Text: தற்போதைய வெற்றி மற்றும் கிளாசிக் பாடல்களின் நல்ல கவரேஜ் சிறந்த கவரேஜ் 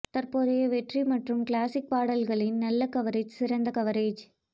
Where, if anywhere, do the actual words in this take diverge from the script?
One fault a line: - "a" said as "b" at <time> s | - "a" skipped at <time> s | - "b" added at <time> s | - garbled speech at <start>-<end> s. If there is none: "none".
none